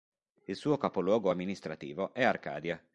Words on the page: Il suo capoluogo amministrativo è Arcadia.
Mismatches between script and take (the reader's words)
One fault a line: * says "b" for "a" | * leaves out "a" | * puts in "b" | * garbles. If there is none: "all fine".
all fine